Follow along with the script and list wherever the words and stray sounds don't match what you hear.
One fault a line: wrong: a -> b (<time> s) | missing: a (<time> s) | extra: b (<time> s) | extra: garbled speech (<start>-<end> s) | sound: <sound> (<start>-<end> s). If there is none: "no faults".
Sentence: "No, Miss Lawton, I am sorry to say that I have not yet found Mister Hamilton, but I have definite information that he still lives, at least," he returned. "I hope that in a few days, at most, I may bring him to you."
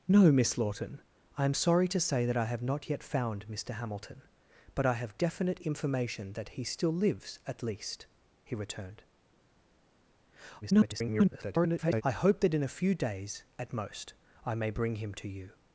extra: garbled speech (10.6-12.0 s)